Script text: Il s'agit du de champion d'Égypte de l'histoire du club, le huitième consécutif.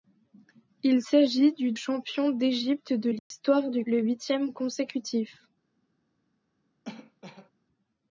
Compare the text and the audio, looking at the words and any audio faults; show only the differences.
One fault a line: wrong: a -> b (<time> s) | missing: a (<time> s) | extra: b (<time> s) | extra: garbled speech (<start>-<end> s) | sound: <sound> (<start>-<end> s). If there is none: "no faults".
missing: de (1.7 s)
sound: dropout (3.2-3.3 s)
missing: club (3.9 s)
sound: cough (6.8-7.5 s)